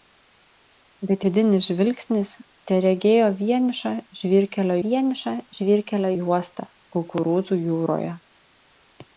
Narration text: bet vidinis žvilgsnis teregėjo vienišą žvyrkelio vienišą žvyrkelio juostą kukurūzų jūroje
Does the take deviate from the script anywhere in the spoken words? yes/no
no